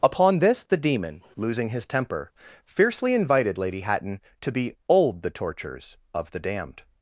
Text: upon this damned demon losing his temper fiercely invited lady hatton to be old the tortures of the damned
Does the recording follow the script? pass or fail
fail